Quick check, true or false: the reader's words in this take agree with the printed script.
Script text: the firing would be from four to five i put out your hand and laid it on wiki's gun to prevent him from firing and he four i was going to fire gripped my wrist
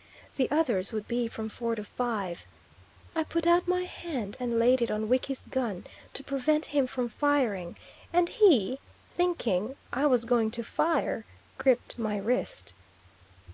false